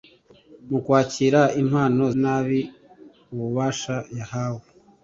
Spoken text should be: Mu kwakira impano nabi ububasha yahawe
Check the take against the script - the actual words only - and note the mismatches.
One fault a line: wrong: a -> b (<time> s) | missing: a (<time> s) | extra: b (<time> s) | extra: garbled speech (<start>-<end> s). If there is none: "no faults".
no faults